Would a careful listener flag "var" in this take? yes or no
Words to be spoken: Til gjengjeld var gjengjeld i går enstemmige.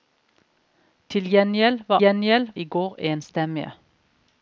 no